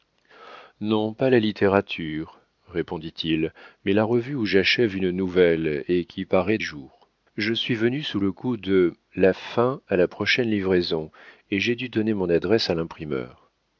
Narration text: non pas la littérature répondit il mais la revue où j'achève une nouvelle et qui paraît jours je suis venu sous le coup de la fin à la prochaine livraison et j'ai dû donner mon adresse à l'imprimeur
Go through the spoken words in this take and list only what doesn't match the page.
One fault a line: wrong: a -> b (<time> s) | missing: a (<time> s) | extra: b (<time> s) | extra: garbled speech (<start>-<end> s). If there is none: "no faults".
no faults